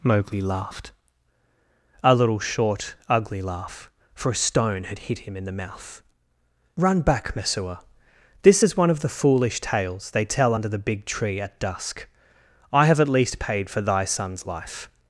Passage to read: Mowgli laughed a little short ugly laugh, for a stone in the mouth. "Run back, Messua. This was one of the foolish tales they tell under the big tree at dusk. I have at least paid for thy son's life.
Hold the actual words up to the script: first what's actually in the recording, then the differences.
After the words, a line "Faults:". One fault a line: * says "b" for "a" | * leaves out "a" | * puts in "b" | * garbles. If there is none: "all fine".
Mowgli laughed a little short ugly laugh, for a stone had hit him in the mouth. "Run back, Messua. This is one of the foolish tales they tell under the big tree at dusk. I have at least paid for thy son's life.
Faults:
* puts in "had hit him"
* says "is" for "was"